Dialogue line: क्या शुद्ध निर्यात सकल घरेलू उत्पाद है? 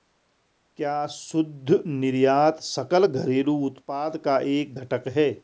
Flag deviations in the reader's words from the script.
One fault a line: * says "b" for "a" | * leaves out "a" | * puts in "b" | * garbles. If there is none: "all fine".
* puts in "का एक घटक"